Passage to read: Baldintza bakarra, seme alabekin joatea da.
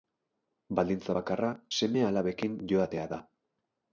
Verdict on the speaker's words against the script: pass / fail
pass